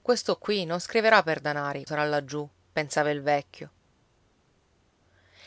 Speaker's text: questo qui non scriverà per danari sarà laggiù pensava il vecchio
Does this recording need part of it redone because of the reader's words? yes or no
no